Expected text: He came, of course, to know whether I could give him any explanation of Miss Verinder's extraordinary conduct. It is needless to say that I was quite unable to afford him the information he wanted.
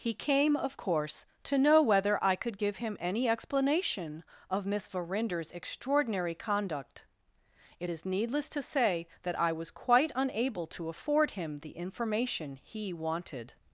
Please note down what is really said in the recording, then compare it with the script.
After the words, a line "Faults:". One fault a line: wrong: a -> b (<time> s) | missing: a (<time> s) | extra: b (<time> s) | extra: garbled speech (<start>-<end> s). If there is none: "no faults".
He came, of course, to know whether I could give him any explanation of Miss Verinder's extraordinary conduct. It is needless to say that I was quite unable to afford him the information he wanted.
Faults:
no faults